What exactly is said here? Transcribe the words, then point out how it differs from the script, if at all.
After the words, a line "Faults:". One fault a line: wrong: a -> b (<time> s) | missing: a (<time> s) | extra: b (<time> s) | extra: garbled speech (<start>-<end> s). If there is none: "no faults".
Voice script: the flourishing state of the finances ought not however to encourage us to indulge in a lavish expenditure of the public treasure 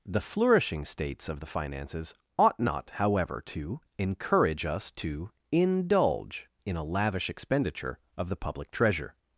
the flourishing states of the finances ought not however to encourage us to indulge in a lavish expenditure of the public treasure
Faults:
wrong: state -> states (0.8 s)